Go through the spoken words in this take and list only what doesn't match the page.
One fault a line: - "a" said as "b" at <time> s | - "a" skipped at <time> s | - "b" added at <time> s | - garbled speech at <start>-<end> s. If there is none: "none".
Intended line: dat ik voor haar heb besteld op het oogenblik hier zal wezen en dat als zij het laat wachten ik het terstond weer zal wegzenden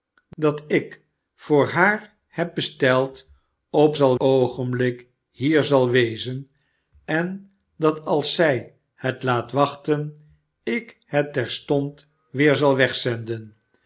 - "het" said as "zal" at 3.9 s